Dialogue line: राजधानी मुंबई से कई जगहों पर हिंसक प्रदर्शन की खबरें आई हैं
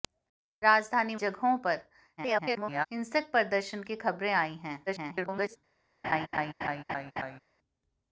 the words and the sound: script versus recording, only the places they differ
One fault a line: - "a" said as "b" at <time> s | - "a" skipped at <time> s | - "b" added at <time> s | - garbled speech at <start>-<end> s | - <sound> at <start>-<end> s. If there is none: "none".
- "मुंबई से कई" skipped at 1.1 s
- garbled speech at 2.2-2.9 s
- garbled speech at 4.9-5.6 s
- laugh at 6.0-7.4 s